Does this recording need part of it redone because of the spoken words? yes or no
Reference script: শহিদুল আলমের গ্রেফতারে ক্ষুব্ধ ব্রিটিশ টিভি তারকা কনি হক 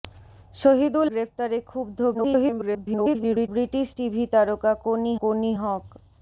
yes